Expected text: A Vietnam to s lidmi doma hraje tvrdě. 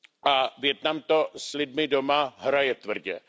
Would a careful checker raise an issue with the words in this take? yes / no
no